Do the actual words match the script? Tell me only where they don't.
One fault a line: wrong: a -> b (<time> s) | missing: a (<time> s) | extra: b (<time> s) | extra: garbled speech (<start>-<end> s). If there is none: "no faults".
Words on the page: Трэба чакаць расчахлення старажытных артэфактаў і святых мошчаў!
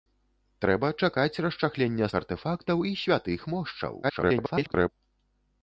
missing: старажытных (2.1 s)
extra: garbled speech (4.0-4.9 s)